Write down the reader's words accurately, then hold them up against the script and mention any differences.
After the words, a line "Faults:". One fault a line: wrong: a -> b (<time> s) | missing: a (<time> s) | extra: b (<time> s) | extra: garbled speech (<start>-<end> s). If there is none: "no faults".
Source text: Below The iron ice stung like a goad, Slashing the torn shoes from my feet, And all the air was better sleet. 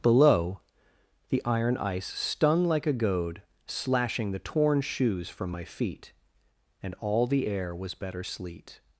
Below The iron ice stung like a goad, Slashing the torn shoes from my feet, And all the air was better sleet.
Faults:
no faults